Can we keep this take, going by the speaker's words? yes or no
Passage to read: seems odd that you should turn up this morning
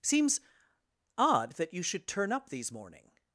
no